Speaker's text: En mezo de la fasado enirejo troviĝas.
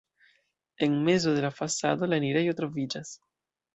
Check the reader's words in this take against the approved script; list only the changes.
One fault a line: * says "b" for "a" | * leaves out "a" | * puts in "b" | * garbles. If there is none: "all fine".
* puts in "la"